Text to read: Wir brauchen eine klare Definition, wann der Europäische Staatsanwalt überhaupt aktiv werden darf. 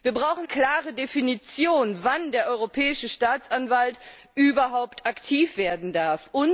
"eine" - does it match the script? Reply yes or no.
no